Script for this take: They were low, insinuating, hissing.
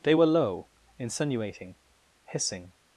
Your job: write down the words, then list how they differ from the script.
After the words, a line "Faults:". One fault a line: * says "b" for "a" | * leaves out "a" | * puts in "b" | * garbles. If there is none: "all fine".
They were low, insinuating, hissing.
Faults:
all fine